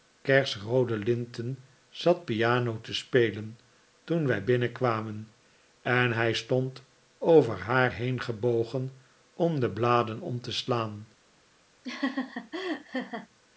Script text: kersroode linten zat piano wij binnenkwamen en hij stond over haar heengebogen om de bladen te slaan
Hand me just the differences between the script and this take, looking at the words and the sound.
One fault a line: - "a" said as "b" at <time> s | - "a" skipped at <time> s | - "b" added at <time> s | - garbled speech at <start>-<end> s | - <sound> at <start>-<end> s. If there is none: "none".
- "te spelen toen" added at 2.8 s
- "om" added at 10.2 s
- laugh at 11.8-13.3 s